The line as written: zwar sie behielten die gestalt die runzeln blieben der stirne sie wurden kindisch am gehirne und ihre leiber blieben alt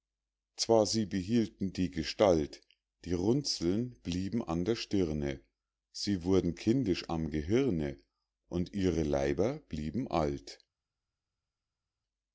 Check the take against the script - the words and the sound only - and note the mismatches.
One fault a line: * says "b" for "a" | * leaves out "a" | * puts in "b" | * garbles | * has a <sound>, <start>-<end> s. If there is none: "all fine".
* puts in "an"